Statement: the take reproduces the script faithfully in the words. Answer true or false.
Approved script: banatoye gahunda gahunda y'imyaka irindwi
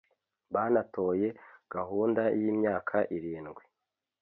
false